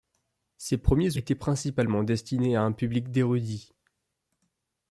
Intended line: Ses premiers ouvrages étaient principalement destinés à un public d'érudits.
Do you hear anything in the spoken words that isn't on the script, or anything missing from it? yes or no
yes